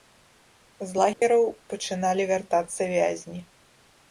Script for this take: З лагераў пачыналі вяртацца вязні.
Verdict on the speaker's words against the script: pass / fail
pass